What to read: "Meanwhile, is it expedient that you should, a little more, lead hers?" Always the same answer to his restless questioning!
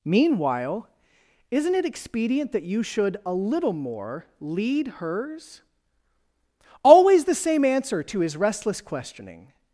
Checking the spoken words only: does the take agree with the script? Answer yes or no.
no